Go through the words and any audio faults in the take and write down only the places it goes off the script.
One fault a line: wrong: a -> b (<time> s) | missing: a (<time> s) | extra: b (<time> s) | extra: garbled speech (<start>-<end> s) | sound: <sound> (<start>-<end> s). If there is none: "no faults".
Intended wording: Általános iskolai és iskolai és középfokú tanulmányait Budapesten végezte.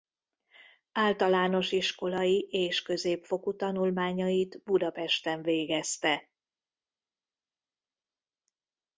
missing: iskolai és (2.8 s)